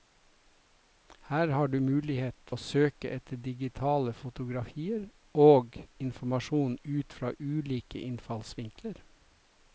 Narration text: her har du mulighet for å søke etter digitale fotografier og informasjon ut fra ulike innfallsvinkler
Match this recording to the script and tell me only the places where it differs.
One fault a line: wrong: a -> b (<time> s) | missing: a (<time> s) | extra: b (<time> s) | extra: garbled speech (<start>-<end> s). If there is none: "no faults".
missing: for (2.5 s)